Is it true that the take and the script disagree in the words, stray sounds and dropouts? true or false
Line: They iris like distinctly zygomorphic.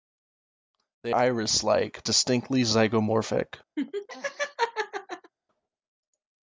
true